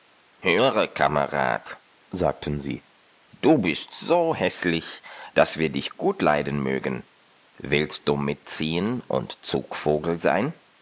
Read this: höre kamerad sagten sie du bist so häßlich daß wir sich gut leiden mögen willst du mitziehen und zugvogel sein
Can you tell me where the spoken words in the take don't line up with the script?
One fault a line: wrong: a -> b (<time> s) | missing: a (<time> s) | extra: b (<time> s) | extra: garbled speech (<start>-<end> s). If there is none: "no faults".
wrong: sich -> dich (5.7 s)